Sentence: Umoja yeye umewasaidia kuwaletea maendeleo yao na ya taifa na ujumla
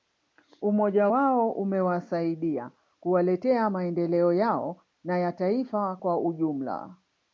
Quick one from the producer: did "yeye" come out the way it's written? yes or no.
no